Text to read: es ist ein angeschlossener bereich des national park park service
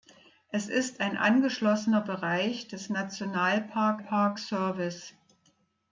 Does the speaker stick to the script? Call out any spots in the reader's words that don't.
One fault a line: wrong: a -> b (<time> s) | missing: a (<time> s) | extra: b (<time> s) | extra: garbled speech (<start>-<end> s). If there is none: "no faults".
no faults